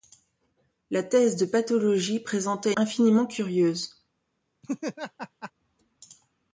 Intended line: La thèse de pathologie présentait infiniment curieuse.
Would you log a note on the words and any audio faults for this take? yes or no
yes